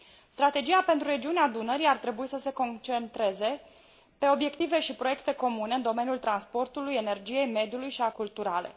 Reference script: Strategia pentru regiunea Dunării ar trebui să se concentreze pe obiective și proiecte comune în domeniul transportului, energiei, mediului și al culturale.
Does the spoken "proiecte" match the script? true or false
true